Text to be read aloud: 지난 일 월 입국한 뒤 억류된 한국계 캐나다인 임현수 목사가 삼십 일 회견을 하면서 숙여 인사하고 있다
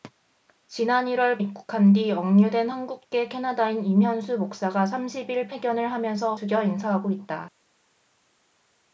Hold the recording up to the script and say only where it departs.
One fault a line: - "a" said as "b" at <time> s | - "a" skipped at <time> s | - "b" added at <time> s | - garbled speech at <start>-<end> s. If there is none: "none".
none